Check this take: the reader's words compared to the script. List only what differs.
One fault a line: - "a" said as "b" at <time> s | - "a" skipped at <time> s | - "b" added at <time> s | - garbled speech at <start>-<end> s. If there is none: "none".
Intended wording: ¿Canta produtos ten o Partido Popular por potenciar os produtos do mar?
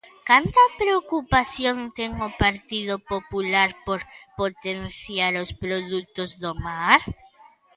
- "produtos" said as "preocupación" at 0.8 s